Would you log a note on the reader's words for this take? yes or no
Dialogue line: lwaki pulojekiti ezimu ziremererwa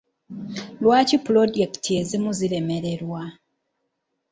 no